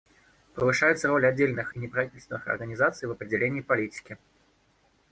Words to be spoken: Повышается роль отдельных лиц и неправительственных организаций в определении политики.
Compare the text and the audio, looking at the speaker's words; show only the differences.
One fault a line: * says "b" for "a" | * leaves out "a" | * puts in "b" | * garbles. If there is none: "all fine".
* leaves out "лиц"